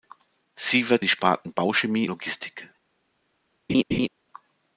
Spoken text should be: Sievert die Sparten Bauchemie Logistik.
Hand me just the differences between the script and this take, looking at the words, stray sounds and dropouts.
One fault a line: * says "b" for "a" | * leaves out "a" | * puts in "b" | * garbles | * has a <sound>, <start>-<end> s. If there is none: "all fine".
* has a laugh, 3.7-4.1 s